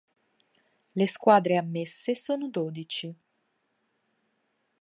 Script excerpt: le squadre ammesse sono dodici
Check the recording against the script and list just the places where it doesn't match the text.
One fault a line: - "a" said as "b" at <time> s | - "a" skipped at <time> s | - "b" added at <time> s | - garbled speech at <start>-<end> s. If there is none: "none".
none